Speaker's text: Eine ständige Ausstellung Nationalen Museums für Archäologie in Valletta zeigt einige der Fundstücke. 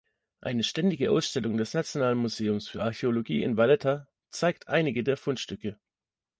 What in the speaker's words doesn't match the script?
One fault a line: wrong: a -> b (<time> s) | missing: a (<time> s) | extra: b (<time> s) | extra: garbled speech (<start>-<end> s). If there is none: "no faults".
extra: des (1.6 s)